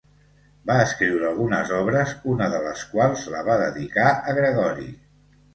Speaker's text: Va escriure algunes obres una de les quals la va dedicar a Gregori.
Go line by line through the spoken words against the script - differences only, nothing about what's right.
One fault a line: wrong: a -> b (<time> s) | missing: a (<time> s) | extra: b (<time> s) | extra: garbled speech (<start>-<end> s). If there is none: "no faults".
no faults